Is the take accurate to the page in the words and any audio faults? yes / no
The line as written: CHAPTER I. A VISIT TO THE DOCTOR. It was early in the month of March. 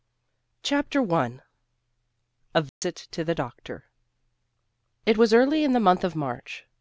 no